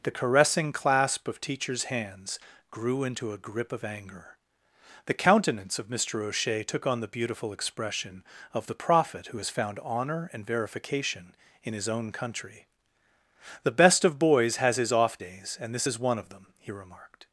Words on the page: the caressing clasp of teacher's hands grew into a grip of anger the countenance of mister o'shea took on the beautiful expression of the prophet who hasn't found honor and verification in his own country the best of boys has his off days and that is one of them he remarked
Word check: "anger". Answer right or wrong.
right